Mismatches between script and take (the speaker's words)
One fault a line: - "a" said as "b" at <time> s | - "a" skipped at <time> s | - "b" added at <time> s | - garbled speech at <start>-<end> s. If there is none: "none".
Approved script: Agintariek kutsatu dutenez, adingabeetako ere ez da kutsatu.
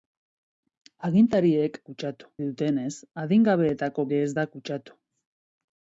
none